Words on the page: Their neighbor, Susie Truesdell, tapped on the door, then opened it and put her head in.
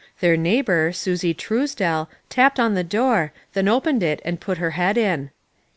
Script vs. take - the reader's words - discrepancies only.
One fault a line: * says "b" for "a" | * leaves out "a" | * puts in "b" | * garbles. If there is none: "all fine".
all fine